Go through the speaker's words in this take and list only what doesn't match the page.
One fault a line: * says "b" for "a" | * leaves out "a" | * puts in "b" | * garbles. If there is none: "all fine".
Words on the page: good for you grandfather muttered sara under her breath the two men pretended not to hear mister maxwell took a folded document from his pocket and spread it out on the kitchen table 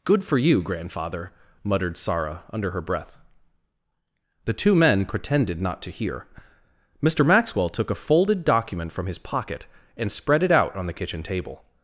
all fine